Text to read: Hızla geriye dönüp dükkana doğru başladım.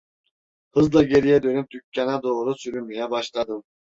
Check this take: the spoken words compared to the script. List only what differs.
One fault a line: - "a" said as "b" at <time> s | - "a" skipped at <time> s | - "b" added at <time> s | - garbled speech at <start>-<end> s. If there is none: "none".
- "sürünmeye" added at 2.5 s